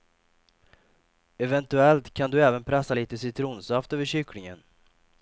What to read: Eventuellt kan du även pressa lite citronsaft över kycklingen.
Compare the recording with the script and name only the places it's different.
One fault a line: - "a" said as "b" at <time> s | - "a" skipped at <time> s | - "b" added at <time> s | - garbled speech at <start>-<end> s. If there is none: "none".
none